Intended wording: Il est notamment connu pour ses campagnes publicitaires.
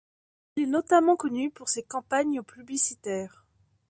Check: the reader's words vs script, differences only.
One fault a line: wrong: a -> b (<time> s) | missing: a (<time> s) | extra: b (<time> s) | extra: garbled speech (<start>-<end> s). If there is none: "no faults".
no faults